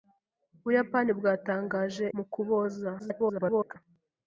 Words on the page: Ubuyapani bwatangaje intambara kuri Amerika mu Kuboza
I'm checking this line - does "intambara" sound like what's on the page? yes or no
no